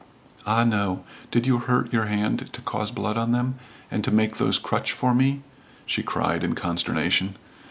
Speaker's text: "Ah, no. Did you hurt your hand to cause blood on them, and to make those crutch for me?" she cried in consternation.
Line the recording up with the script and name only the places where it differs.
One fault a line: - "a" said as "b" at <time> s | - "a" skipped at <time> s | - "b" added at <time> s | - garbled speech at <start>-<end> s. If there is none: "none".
none